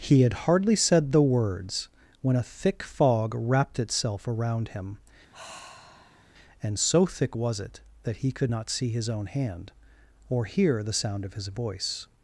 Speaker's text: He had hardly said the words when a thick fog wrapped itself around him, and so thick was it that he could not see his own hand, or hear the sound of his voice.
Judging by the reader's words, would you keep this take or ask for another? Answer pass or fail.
pass